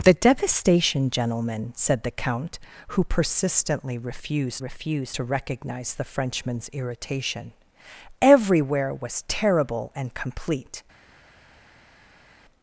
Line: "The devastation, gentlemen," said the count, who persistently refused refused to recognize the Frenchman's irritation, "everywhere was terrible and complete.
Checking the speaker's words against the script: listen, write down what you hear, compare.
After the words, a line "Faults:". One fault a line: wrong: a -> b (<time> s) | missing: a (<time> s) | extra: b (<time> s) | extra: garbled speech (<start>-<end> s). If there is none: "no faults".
"The devastation, gentlemen," said the count, who persistently refused refused to recognize the Frenchman's irritation, "everywhere was terrible and complete.
Faults:
no faults